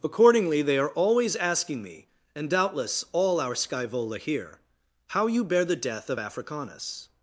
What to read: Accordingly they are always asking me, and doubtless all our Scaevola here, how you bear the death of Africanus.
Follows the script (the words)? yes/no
yes